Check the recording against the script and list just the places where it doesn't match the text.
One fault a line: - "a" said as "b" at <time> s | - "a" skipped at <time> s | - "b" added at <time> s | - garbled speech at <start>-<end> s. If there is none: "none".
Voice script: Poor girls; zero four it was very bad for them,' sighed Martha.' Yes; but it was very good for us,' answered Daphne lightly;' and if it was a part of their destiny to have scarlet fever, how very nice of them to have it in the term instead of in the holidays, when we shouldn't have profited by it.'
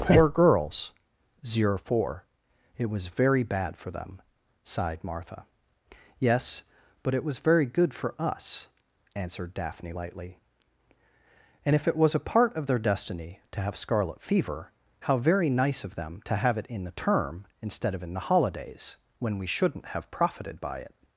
none